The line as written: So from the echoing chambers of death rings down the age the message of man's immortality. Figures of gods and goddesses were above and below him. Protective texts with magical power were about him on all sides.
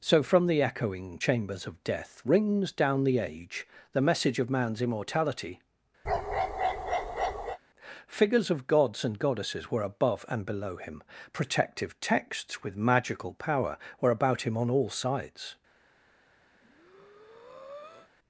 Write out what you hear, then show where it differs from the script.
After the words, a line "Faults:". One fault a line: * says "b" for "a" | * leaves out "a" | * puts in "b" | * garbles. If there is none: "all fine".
So from the echoing chambers of death rings down the age the message of man's immortality. Figures of gods and goddesses were above and below him. Protective texts with magical power were about him on all sides.
Faults:
all fine